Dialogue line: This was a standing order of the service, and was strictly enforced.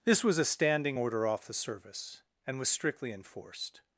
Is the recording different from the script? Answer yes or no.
yes